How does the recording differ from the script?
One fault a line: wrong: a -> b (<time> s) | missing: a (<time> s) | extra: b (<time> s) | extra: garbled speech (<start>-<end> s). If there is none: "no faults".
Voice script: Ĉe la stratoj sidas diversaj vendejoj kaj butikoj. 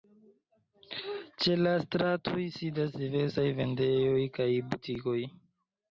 no faults